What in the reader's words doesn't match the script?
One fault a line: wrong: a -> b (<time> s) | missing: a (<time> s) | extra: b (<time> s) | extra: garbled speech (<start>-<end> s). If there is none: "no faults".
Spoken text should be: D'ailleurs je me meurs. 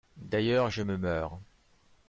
no faults